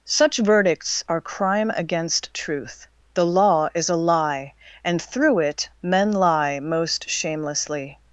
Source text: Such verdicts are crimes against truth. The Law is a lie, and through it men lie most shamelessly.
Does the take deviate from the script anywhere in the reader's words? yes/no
yes